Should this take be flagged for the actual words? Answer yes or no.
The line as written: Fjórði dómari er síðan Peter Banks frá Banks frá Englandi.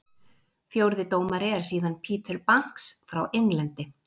yes